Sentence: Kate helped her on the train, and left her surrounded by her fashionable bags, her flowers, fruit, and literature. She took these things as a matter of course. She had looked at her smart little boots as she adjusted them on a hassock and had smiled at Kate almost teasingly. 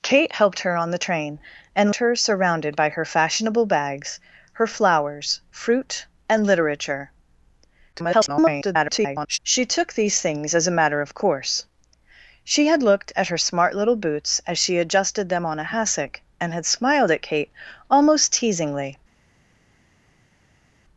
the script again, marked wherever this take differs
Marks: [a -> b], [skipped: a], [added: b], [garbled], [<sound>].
Kate helped her on the train, and [skipped: left] her surrounded by her fashionable bags, her flowers, fruit, and literature. [garbled] She took these things as a matter of course. She had looked at her smart little boots as she adjusted them on a hassock and had smiled at Kate almost teasingly.